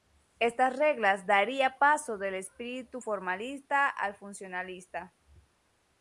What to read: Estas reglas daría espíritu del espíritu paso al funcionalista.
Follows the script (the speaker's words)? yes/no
no